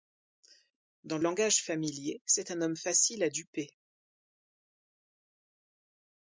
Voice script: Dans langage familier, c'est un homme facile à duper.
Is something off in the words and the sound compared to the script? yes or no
no